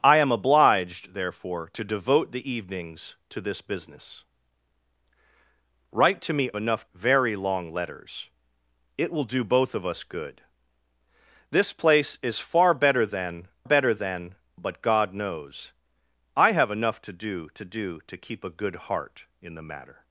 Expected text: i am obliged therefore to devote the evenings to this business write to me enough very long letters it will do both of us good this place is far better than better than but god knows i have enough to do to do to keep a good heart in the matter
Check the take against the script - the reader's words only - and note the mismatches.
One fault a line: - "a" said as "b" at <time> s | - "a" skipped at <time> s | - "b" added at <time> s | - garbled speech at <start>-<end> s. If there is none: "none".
none